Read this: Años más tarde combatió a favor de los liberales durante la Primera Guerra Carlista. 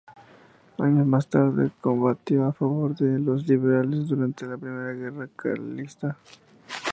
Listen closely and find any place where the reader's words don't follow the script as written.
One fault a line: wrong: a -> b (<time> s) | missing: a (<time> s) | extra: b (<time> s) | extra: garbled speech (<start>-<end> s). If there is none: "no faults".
no faults